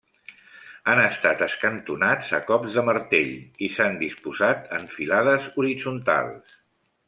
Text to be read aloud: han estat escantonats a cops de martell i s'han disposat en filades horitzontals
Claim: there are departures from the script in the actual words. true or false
false